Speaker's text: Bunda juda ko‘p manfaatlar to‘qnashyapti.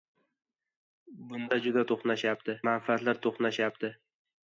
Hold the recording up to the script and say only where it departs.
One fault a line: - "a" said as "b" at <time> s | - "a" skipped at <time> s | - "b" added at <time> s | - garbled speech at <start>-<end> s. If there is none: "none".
- "ko‘p" said as "to‘qnashyapti" at 1.9 s